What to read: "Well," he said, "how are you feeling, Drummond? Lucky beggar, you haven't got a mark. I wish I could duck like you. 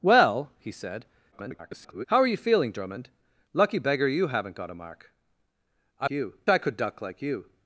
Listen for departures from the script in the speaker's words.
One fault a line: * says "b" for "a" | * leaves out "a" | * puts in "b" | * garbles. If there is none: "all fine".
* garbles
* says "you" for "wish"